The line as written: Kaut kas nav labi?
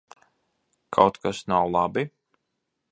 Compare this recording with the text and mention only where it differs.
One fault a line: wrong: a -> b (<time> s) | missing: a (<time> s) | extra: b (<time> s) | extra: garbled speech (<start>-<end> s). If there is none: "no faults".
no faults